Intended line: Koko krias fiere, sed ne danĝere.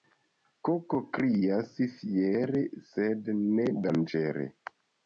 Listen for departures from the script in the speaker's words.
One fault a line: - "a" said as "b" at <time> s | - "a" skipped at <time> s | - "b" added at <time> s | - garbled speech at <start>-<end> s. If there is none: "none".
none